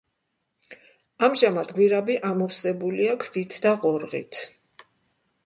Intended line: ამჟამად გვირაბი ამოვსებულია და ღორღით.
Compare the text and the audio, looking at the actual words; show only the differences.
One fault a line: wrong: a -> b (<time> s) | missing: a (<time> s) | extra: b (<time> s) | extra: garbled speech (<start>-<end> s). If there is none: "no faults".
extra: ქვით (3.3 s)